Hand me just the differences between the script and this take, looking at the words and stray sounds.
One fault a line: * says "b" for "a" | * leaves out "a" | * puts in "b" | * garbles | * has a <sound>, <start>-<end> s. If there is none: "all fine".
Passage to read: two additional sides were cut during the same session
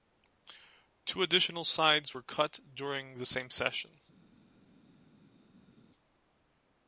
all fine